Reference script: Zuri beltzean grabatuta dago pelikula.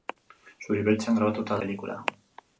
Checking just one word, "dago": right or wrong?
wrong